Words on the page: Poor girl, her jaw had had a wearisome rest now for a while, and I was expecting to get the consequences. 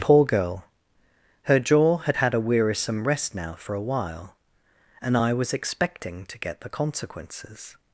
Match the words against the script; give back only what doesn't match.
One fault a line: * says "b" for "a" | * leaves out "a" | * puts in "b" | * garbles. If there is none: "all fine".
all fine